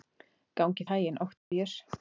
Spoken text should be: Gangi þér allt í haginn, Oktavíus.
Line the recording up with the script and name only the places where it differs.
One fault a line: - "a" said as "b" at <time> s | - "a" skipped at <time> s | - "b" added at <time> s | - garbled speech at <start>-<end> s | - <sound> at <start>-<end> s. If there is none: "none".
- "þér allt" skipped at 0.9 s
- dropout at 1.4-1.5 s